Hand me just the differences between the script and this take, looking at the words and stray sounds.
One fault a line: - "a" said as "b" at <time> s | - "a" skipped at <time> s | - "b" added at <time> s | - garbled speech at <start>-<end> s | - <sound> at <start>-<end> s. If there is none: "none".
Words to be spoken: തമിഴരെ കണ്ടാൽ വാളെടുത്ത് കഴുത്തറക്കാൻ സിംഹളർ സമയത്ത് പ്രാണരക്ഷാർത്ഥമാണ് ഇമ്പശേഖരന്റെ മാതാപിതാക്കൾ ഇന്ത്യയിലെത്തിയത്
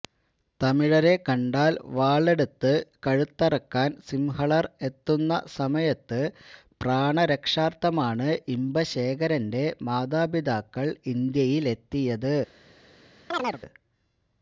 - "എത്തുന്ന" added at 4.8 s
- chirp at 13.3-13.6 s